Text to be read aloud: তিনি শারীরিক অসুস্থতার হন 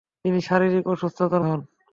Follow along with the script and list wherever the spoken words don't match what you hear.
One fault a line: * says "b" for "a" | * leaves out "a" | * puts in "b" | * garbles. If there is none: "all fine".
all fine